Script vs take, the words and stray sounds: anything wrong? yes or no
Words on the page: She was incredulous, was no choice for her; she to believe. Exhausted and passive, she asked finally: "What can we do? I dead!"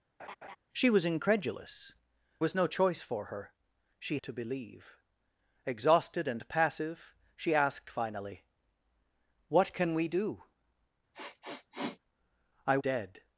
yes